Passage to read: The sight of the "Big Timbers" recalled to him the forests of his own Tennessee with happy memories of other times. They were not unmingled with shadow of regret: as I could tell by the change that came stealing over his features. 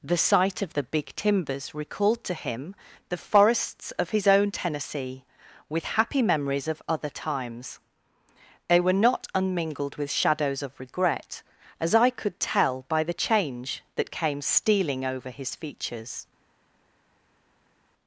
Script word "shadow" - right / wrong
wrong